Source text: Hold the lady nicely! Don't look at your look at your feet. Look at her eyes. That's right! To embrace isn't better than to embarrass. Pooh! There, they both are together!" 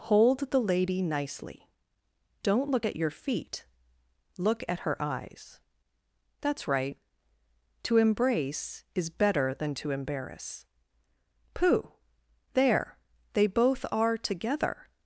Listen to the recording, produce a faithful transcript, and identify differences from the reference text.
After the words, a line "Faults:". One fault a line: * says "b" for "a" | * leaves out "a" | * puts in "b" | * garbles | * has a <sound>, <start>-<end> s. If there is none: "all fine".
Hold the lady nicely! Don't look at your feet. Look at her eyes. That's right! To embrace is better than to embarrass. Pooh! There, they both are together!"
Faults:
* leaves out "look at your"
* says "is" for "isn't"